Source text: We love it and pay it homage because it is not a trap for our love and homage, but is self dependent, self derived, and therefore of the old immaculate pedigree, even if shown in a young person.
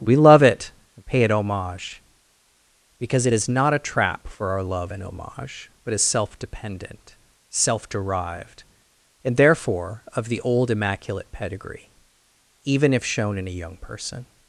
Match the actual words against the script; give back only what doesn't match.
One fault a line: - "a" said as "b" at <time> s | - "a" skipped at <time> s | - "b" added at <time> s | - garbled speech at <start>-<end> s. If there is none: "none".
none